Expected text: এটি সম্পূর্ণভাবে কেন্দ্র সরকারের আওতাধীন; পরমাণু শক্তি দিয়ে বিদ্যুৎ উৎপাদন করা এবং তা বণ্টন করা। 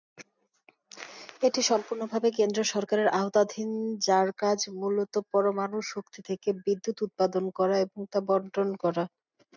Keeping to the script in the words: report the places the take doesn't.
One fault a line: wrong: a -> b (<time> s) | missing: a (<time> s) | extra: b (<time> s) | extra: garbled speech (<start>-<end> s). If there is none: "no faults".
extra: যার কাজ মূলত (4.0 s)
wrong: দিয়ে -> থেকে (6.3 s)